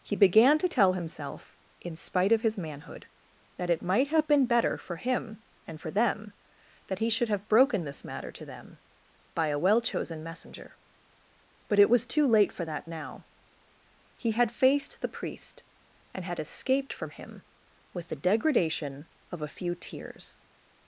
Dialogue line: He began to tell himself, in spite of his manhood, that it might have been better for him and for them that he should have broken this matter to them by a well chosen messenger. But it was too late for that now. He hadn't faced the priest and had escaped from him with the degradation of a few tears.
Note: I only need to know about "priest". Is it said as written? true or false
true